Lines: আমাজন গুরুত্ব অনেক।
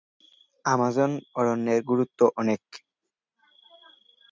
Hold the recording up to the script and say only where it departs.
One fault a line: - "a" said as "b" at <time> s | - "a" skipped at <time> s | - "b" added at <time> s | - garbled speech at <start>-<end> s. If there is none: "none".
- "অরণ্যের" added at 1.4 s